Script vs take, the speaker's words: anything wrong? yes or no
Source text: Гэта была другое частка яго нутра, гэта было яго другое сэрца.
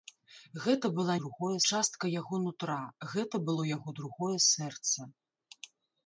no